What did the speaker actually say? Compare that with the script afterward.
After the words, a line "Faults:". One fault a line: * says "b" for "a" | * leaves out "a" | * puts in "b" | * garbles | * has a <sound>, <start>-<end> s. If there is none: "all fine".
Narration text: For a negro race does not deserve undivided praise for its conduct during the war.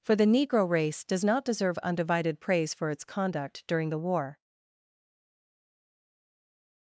For the negro race does not deserve undivided praise for its conduct during the war.
Faults:
* says "the" for "a"